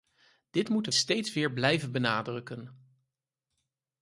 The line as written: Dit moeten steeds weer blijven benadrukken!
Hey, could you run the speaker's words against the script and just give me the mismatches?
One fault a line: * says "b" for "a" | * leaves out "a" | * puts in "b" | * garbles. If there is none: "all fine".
all fine